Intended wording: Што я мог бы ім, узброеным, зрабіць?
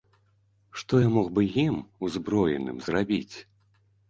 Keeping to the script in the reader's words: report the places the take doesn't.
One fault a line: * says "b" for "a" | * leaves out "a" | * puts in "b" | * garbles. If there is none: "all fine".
all fine